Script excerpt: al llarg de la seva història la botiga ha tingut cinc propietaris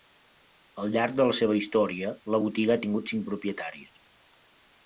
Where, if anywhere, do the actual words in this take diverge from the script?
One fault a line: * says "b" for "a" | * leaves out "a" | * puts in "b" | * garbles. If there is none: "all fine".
all fine